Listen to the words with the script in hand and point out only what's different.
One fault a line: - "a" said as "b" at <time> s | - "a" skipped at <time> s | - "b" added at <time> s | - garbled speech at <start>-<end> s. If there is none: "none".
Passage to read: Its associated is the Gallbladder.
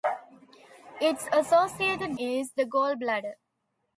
none